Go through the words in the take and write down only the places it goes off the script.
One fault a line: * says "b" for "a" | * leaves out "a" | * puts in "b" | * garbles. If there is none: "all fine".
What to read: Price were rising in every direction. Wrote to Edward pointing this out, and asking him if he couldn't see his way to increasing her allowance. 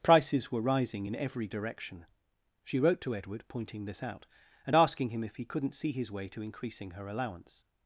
* says "Prices" for "Price"
* puts in "She"